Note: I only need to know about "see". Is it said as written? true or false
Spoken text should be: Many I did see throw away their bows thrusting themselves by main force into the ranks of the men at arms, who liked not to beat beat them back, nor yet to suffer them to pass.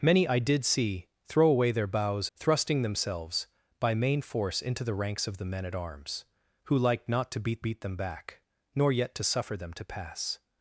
true